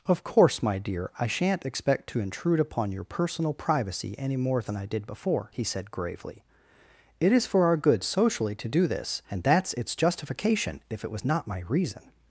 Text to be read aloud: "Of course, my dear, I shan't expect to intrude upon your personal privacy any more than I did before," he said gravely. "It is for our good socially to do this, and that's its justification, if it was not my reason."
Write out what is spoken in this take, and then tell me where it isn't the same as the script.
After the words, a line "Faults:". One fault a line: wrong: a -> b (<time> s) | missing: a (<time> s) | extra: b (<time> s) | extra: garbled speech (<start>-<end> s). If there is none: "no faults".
"Of course, my dear, I shan't expect to intrude upon your personal privacy any more than I did before," he said gravely. "It is for our good socially to do this, and that's its justification, if it was not my reason."
Faults:
no faults